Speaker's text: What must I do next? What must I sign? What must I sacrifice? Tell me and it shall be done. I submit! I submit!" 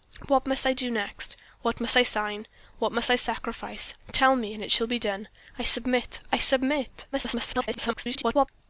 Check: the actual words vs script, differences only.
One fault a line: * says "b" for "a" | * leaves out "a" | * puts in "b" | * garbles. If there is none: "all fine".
* garbles